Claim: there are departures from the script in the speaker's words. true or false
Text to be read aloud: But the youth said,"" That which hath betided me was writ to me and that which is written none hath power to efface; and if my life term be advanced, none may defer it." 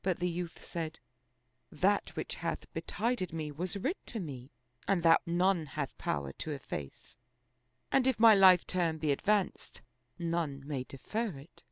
true